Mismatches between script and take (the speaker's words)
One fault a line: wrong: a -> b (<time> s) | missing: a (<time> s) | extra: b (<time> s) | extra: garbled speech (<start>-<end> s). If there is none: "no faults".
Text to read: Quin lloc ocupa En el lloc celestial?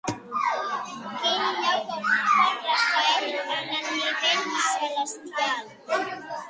extra: Rafael (2.6 s)
wrong: lloc -> nivell (4.0 s)